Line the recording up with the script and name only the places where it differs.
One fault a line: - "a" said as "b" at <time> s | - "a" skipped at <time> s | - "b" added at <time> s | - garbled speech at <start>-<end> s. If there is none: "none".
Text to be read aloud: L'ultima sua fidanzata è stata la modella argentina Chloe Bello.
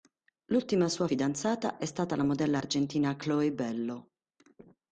none